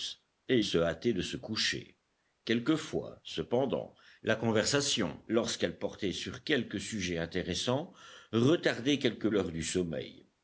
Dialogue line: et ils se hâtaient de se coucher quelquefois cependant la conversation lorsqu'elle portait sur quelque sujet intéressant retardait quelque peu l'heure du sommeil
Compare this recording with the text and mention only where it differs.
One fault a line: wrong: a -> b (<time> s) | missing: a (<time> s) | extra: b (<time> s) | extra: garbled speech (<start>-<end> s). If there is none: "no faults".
missing: ils (0.6 s)
missing: peu (9.3 s)